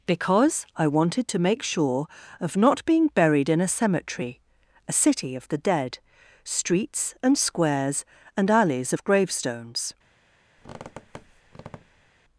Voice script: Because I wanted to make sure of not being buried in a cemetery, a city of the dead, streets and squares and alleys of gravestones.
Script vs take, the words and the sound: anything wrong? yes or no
yes